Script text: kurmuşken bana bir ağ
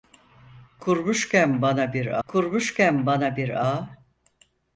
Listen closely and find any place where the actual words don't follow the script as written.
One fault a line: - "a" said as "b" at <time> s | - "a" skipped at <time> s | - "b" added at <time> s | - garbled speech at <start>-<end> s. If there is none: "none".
- "kurmuşken bana bir" added at 2.3 s